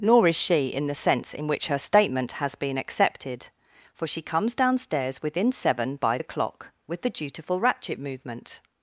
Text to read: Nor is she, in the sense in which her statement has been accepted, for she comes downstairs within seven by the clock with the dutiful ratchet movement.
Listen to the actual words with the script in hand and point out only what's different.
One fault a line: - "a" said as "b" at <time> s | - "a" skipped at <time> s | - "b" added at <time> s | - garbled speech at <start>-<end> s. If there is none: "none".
none